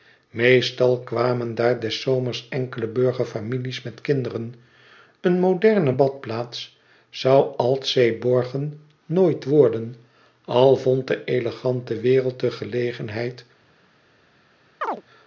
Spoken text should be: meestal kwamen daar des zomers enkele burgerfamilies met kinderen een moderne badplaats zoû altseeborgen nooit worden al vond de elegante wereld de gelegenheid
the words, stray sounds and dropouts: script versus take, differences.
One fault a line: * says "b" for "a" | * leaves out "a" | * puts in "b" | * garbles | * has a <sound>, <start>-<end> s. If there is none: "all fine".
* has a chirp, 14.8-15.0 s